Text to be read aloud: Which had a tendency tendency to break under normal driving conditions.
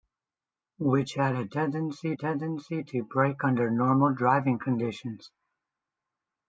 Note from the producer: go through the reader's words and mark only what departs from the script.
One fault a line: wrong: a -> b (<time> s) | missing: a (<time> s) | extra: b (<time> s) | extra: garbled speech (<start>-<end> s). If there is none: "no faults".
no faults